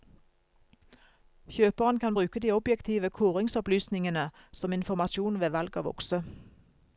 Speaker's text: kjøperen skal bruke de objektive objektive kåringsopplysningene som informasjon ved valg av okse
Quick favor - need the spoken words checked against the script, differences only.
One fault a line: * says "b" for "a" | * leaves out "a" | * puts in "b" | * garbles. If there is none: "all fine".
* says "kan" for "skal"
* leaves out "objektive"